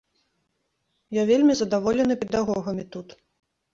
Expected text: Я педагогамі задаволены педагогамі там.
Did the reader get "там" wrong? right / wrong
wrong